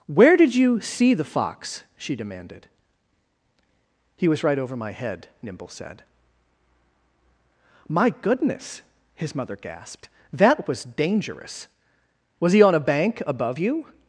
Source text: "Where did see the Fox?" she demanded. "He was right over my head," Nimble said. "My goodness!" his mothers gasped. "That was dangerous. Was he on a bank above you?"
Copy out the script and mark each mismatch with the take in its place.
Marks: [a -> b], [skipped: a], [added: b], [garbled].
"Where did [added: you] see the Fox?" she demanded. "He was right over my head," Nimble said. "My goodness!" his [mothers -> mother] gasped. "That was dangerous. Was he on a bank above you?"